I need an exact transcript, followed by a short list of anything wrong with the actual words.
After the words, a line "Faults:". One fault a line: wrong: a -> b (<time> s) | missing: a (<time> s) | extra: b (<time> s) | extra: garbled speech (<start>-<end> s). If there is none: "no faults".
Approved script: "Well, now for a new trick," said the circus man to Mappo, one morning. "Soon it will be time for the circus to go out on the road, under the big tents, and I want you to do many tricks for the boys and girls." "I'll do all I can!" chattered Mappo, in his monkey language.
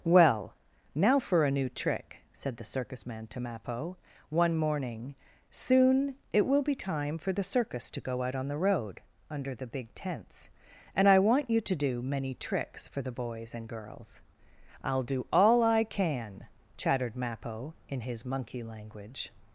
"Well, now for a new trick," said the circus man to Mappo, one morning. "Soon it will be time for the circus to go out on the road, under the big tents, and I want you to do many tricks for the boys and girls." "I'll do all I can!" chattered Mappo, in his monkey language.
Faults:
no faults